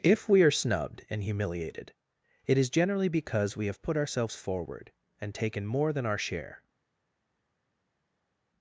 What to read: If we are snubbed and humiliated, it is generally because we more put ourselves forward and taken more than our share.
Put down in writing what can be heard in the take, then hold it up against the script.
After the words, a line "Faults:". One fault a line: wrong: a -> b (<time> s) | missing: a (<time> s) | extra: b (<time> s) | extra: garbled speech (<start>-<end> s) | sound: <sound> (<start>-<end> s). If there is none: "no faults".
If we are snubbed and humiliated, it is generally because we have put ourselves forward and taken more than our share.
Faults:
wrong: more -> have (3.7 s)